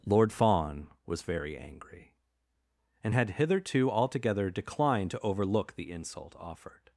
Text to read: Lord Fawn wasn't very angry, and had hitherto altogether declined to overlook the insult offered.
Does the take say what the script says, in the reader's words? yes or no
no